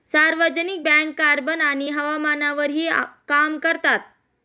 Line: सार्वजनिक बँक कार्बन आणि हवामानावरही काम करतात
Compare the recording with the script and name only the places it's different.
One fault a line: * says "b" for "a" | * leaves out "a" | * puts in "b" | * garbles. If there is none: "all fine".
all fine